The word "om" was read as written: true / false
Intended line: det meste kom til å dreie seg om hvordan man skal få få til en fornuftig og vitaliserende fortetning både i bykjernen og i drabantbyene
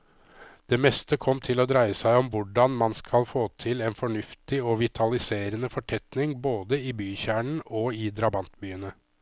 true